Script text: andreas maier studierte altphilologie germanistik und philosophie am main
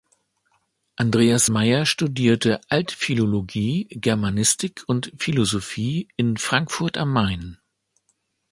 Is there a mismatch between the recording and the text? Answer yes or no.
yes